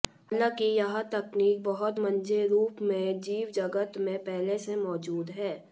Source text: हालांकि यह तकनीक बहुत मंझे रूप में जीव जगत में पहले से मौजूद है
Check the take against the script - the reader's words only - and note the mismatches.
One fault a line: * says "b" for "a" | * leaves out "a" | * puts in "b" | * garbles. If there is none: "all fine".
all fine